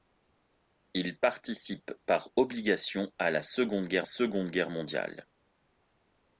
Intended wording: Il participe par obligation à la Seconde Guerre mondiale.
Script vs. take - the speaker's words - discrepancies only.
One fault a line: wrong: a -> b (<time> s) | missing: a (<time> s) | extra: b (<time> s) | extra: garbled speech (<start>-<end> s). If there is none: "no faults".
extra: Seconde Guerre (4.0 s)